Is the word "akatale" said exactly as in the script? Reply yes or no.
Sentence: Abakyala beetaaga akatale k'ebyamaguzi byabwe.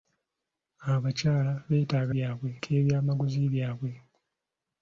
no